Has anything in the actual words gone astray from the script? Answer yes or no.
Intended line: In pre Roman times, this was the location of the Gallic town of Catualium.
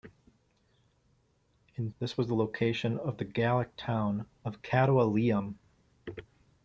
yes